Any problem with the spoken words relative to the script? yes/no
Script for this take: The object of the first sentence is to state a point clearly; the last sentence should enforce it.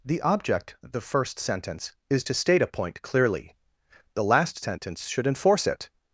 yes